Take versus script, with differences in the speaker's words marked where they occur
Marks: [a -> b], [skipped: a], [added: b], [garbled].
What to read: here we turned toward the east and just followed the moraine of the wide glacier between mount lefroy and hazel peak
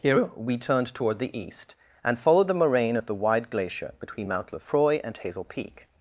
here we turned toward the east and [skipped: just] followed the moraine of the wide glacier between mount lefroy and hazel peak